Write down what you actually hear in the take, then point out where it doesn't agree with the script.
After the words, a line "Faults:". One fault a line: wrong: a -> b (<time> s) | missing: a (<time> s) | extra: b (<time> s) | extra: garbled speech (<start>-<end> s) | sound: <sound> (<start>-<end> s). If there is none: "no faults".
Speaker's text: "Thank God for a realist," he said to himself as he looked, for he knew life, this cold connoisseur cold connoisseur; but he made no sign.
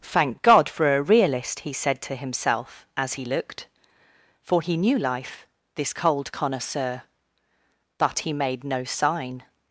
"Thank God for a realist," he said to himself as he looked, for he knew life, this cold connoisseur; but he made no sign.
Faults:
missing: cold connoisseur (7.0 s)